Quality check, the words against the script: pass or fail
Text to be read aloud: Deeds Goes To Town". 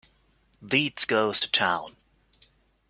pass